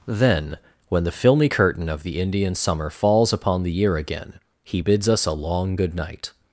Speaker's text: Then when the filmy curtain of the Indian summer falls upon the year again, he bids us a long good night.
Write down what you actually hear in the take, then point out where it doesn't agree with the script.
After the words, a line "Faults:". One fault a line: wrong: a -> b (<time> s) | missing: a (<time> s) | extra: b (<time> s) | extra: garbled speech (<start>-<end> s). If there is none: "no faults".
Then when the filmy curtain of the Indian summer falls upon the year again, he bids us a long good night.
Faults:
no faults